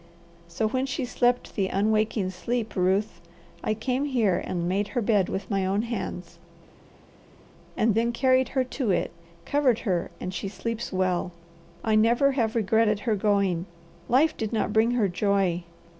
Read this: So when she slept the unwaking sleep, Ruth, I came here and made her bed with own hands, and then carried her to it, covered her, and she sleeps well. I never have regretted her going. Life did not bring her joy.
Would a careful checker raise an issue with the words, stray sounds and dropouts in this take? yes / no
yes